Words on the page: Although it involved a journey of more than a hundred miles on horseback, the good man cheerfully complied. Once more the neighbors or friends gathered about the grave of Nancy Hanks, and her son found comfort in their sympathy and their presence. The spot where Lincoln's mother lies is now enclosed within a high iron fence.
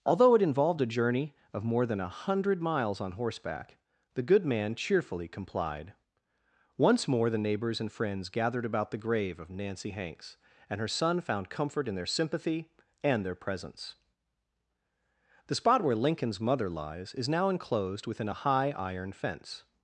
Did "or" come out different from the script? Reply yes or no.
yes